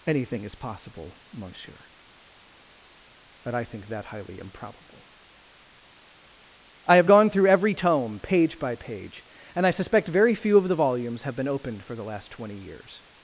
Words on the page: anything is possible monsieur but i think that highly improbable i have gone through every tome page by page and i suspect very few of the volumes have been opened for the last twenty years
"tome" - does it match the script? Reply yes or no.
yes